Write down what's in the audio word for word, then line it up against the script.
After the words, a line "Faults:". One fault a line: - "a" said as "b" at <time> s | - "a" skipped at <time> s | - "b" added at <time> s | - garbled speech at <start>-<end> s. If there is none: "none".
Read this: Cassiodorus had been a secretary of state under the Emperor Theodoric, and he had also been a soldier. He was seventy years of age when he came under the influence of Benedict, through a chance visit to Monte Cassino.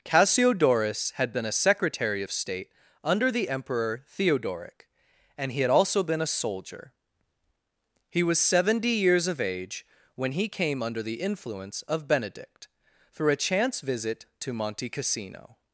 Cassiodorus had been a secretary of state under the Emperor Theodoric, and he had also been a soldier. He was seventy years of age when he came under the influence of Benedict, through a chance visit to Monte Cassino.
Faults:
none